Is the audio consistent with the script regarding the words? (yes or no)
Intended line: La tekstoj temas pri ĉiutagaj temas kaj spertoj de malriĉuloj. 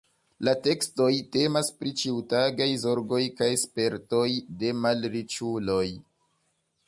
no